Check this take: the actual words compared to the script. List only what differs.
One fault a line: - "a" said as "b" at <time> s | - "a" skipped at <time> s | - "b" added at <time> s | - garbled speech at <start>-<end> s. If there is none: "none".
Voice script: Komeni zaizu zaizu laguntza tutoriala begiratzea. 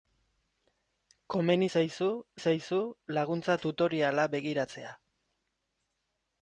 none